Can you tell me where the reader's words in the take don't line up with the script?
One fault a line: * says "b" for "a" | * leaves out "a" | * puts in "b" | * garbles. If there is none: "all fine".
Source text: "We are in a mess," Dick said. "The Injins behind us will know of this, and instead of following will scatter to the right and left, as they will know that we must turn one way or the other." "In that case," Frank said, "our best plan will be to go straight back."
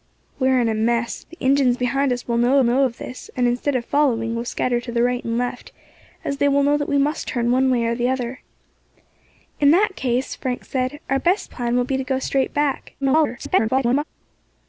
* leaves out "Dick said"
* puts in "know"
* garbles